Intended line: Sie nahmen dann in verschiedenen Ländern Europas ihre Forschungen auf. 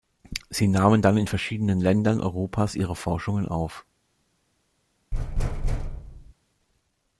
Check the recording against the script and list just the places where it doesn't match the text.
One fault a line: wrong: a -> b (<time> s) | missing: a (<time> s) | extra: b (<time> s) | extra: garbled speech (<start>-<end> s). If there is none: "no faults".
no faults